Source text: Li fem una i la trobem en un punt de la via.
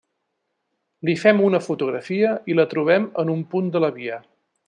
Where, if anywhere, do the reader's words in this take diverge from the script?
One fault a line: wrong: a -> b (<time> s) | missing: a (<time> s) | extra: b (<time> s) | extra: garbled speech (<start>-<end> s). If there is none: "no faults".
extra: fotografia (1.6 s)